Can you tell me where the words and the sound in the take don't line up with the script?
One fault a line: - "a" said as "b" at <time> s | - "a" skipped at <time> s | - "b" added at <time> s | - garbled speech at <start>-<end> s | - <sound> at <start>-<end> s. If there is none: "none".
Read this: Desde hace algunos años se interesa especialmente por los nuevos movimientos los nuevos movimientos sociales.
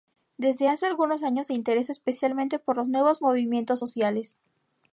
- "los nuevos movimientos" skipped at 3.8 s